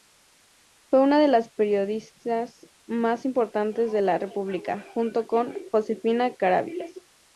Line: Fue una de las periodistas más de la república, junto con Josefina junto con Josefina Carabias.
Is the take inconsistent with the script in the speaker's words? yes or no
yes